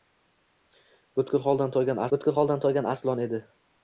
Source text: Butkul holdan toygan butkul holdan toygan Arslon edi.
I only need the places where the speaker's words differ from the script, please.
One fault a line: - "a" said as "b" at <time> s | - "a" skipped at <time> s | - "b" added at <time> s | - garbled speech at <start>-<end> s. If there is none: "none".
none